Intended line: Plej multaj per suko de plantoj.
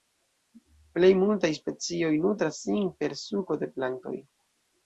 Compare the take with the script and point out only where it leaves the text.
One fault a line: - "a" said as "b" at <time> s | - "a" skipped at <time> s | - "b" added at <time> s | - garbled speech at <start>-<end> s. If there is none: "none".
- "specioj nutras sin" added at 1.6 s